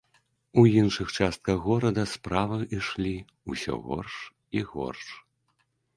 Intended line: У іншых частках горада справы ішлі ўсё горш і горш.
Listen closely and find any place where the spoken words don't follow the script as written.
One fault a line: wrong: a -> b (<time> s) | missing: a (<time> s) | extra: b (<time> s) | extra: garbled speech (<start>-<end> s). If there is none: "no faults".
no faults